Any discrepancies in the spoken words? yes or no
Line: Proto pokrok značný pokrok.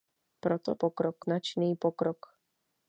no